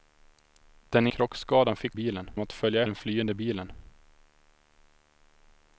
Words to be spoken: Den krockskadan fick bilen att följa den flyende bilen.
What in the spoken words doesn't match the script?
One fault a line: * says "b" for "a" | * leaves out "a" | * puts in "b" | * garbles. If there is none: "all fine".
all fine